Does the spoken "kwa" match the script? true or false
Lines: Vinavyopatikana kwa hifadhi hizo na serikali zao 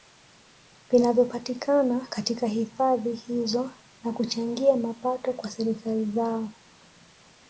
false